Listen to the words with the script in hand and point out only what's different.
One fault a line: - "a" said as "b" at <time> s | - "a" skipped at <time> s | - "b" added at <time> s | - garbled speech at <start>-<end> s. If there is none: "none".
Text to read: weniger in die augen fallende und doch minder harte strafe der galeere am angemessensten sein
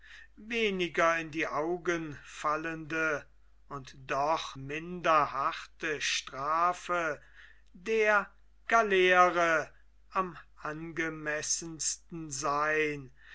none